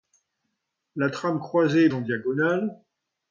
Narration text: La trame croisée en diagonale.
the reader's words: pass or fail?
pass